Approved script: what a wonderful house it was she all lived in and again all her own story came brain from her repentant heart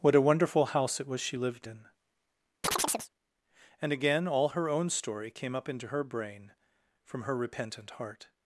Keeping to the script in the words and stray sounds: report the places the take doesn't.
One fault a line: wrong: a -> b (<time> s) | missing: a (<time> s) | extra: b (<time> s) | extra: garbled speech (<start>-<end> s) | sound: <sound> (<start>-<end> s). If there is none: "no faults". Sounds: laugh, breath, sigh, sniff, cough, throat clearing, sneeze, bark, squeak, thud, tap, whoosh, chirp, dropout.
missing: all (1.4 s)
sound: chirp (2.6-3.1 s)
extra: up into her (5.6 s)